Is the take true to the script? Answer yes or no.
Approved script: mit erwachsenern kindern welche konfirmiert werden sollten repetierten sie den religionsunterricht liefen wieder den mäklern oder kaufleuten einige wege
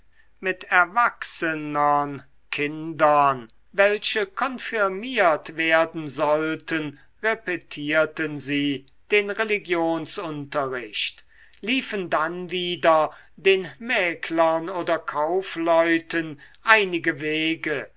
no